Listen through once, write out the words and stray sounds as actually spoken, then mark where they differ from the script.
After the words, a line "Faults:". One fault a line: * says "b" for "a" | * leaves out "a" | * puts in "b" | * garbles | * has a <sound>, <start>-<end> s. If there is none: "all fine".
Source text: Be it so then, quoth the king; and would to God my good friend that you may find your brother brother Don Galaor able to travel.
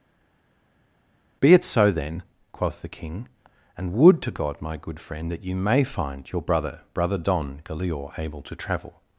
Be it so then, quoth the king; and would to God my good friend that you may find your brother brother Don Galaor able to travel.
Faults:
all fine